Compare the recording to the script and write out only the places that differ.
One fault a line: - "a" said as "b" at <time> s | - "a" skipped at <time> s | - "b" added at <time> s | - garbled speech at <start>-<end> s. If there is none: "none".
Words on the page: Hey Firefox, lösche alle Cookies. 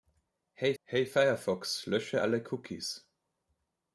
- "hey" added at 0.8 s